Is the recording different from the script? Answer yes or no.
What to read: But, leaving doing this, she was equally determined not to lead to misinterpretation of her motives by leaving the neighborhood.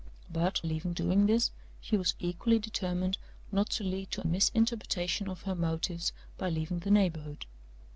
no